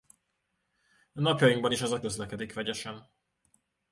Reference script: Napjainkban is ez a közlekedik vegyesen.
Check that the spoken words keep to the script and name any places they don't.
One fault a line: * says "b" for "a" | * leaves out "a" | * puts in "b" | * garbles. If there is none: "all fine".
all fine